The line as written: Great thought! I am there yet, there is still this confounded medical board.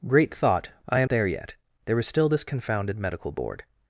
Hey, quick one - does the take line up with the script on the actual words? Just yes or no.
yes